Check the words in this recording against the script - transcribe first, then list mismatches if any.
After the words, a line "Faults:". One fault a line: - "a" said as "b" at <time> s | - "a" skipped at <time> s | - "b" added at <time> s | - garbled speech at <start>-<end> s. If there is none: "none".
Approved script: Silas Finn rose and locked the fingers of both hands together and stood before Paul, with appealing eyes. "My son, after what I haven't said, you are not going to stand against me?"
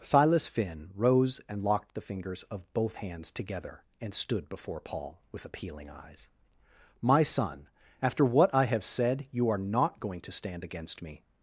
Silas Finn rose and locked the fingers of both hands together and stood before Paul, with appealing eyes. "My son, after what I have said, you are not going to stand against me?"
Faults:
- "haven't" said as "have" at 8.6 s